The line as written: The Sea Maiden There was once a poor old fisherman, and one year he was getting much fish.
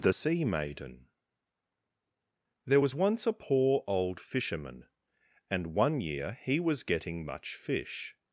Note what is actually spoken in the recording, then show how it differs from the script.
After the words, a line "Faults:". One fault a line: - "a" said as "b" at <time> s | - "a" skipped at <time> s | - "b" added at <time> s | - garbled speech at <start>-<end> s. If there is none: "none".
The Sea Maiden There was once a poor old fisherman, and one year he was getting much fish.
Faults:
none